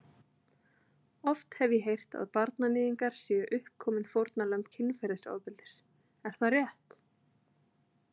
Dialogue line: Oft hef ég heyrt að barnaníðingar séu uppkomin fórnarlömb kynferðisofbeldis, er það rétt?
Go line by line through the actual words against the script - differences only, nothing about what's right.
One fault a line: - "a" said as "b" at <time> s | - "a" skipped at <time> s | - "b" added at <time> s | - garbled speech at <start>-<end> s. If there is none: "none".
none